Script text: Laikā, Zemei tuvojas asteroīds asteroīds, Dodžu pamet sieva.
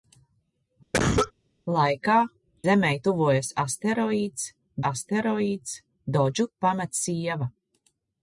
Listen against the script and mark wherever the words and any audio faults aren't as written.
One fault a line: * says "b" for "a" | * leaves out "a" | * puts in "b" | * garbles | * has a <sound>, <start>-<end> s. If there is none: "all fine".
* has a cough, 0.9-1.3 s